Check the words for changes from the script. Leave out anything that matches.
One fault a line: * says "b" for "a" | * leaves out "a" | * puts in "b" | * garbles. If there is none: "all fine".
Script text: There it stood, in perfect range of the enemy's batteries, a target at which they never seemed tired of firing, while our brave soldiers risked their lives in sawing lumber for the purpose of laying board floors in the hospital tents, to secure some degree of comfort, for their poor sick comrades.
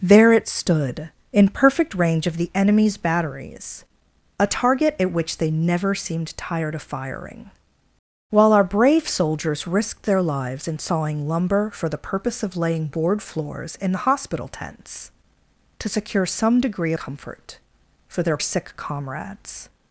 * leaves out "of"
* leaves out "poor"